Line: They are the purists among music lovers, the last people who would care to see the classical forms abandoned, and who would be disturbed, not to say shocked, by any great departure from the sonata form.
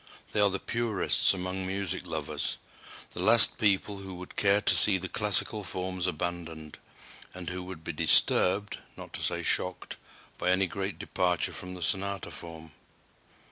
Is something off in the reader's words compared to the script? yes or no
no